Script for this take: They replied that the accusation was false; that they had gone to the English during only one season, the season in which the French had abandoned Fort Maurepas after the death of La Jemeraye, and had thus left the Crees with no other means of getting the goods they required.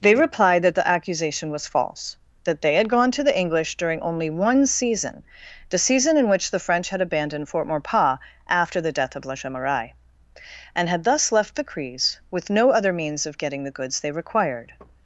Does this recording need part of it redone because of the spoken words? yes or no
no